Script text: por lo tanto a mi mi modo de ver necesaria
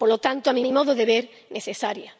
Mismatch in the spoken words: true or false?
false